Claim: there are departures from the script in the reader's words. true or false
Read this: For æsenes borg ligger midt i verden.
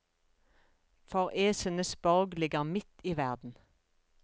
false